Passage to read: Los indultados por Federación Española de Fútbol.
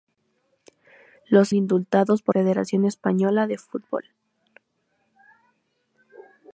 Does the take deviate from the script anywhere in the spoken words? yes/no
no